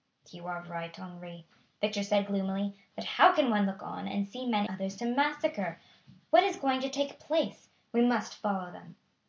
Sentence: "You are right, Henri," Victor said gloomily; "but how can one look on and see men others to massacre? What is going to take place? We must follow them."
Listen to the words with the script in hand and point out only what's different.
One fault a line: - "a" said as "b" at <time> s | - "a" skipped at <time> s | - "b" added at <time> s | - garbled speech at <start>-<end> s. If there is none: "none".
none